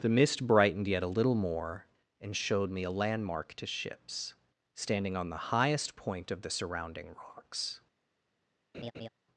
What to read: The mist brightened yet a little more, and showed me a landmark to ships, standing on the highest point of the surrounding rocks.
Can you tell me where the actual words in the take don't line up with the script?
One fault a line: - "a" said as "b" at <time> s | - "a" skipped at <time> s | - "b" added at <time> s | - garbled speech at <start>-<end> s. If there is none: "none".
none